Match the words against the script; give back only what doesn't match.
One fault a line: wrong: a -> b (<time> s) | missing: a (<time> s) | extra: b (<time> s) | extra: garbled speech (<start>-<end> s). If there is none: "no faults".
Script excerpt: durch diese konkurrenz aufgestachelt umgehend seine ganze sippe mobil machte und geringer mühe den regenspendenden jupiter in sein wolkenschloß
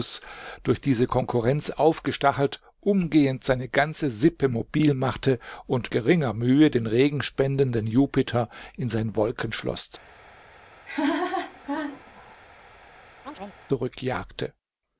no faults